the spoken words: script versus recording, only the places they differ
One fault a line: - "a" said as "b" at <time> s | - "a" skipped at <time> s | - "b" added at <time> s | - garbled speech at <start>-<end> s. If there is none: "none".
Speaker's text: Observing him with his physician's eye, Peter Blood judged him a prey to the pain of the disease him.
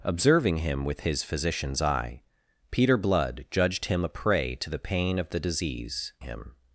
none